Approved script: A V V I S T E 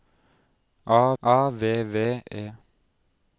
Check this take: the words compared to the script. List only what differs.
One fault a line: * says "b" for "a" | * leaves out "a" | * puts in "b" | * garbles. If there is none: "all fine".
* puts in "a"
* leaves out "I S T"